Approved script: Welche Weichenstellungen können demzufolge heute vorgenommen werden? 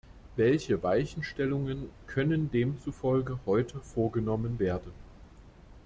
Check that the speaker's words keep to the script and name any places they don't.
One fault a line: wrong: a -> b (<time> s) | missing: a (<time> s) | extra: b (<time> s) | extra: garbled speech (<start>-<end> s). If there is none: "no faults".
no faults